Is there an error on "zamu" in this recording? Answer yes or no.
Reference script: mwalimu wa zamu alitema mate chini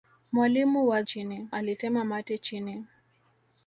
yes